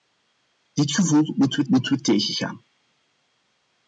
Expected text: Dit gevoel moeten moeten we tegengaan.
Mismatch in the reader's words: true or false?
false